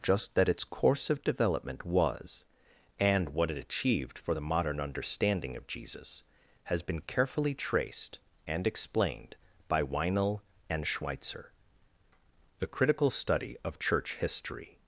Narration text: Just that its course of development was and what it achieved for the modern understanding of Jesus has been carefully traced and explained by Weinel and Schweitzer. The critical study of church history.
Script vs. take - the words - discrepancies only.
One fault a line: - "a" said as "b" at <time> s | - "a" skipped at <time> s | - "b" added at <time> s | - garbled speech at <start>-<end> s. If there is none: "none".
none